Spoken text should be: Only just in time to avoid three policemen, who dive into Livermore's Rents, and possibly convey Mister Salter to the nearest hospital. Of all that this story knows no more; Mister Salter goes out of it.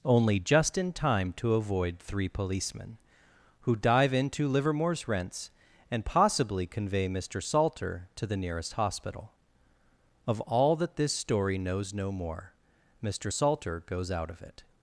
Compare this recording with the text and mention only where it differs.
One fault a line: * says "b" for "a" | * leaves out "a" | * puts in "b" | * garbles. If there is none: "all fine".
all fine